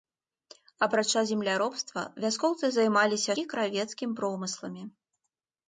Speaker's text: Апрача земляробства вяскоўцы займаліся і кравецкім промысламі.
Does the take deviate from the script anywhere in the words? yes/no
no